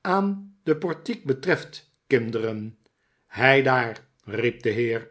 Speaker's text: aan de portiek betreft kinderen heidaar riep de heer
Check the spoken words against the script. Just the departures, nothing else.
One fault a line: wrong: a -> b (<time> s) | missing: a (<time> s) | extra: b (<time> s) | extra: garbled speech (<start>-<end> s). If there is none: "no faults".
no faults